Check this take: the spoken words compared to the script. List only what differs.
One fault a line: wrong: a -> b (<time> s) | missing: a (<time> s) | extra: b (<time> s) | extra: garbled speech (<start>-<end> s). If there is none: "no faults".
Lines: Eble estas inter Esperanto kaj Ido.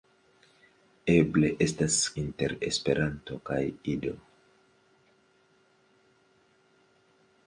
no faults